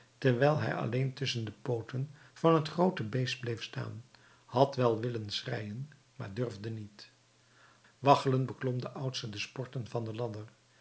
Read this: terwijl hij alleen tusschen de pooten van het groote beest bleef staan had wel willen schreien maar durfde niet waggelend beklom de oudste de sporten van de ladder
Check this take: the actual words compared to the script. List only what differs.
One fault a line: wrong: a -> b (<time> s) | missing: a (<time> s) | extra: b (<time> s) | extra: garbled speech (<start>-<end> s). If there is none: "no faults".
no faults